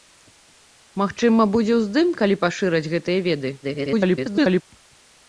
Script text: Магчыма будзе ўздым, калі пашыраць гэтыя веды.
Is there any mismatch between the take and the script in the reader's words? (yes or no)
yes